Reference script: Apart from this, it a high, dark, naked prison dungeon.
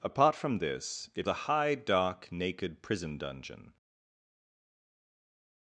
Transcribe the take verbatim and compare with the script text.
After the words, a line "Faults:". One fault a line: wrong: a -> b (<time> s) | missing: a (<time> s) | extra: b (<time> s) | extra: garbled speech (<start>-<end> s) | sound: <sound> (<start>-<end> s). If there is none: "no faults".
Apart from this, it a high, dark, naked prison dungeon.
Faults:
no faults